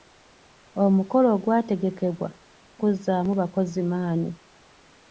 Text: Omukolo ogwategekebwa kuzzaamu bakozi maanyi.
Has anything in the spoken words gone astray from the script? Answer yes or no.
no